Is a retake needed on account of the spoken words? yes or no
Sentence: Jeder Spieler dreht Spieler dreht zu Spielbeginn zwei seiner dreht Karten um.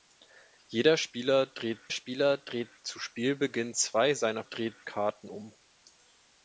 no